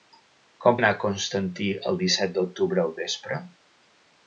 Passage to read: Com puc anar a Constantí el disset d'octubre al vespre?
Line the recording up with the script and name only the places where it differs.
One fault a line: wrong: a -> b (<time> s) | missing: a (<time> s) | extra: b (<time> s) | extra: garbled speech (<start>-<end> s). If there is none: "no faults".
missing: puc (0.8 s)